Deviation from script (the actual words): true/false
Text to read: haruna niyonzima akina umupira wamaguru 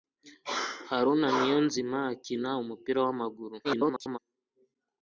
true